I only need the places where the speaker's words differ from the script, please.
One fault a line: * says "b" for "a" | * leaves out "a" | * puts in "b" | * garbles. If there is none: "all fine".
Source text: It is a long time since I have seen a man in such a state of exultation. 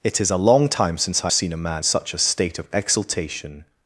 * leaves out "have"
* leaves out "in"